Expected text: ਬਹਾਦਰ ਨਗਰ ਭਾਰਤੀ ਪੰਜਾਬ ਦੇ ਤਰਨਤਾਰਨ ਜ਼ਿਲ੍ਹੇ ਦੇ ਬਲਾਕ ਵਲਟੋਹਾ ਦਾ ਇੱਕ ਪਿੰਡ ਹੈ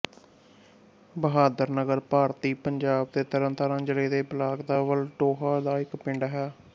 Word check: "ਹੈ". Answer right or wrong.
right